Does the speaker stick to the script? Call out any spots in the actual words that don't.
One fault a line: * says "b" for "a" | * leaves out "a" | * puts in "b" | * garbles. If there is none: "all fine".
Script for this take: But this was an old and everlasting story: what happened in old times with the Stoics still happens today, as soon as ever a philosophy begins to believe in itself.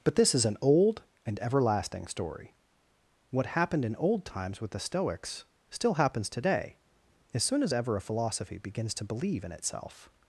* says "is" for "was"